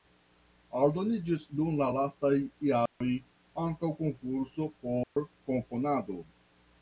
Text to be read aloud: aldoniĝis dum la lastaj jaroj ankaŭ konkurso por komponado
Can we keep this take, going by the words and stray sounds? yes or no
no